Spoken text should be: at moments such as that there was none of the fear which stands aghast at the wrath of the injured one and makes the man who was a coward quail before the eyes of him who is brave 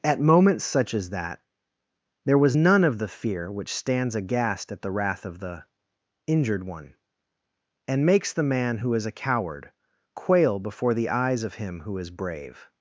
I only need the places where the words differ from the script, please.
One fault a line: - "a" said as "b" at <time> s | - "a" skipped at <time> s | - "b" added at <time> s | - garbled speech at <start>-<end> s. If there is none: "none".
- "was" said as "is" at 8.9 s